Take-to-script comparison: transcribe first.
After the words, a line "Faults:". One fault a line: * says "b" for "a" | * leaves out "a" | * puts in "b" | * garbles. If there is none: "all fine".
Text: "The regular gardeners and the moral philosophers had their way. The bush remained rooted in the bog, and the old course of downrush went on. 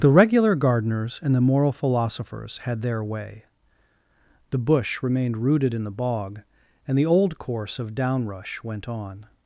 "The regular gardeners and the moral philosophers had their way. The bush remained rooted in the bog, and the old course of downrush went on.
Faults:
all fine